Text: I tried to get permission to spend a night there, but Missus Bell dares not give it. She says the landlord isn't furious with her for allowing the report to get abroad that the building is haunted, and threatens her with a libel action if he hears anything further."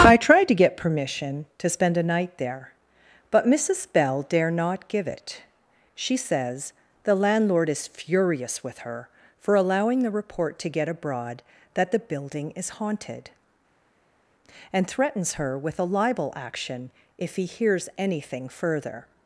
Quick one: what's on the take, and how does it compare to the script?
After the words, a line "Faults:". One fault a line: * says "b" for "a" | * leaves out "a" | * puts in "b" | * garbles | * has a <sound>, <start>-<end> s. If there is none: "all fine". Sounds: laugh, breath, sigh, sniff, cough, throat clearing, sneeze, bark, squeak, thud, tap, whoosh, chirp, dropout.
I tried to get permission to spend a night there, but Missus Bell dare not give it. She says the landlord is furious with her for allowing the report to get abroad that the building is haunted, and threatens her with a libel action if he hears anything further."
Faults:
* says "dare" for "dares"
* says "is" for "isn't"